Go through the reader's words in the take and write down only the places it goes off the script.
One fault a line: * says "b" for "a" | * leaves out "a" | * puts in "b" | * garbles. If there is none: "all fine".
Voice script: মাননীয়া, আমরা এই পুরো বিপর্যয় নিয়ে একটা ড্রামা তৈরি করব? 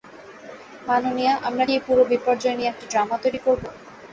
all fine